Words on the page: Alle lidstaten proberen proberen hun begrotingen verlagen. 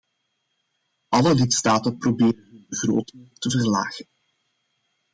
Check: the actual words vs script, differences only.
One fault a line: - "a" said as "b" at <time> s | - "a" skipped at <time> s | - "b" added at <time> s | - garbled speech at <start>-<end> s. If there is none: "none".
- "proberen" skipped at 2.5 s
- "te" added at 3.4 s